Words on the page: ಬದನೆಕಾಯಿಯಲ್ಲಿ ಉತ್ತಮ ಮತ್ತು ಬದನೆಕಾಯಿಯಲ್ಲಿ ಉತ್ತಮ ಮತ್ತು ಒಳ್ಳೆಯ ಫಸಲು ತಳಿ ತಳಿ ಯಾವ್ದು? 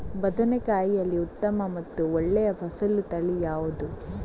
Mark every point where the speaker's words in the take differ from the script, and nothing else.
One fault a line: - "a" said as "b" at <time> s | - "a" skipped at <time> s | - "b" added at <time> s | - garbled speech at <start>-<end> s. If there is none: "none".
- "ಬದನೆಕಾಯಿಯಲ್ಲಿ ಉತ್ತಮ ಮತ್ತು" skipped at 2.1 s
- "ತಳಿ" skipped at 3.4 s